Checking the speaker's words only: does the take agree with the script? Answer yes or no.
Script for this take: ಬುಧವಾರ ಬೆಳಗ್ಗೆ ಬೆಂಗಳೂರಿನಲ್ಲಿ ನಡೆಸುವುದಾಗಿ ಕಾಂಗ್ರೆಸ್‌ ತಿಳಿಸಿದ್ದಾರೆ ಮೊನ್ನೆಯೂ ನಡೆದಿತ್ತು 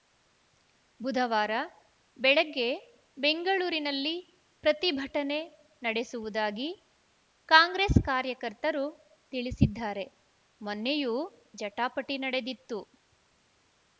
no